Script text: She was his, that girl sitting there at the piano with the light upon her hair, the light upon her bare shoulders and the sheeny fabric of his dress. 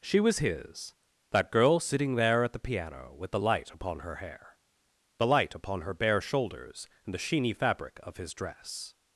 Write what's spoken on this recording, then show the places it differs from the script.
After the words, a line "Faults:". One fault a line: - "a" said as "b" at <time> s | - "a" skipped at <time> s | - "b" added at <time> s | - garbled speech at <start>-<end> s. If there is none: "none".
She was his, that girl sitting there at the piano with the light upon her hair, the light upon her bare shoulders and the sheeny fabric of his dress.
Faults:
none